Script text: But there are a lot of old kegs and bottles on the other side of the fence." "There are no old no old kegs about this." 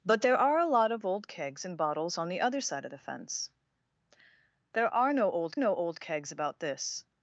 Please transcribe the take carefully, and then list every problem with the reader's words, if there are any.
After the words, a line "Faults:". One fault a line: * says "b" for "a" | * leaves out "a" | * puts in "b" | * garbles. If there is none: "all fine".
But there are a lot of old kegs and bottles on the other side of the fence." "There are no old no old kegs about this."
Faults:
all fine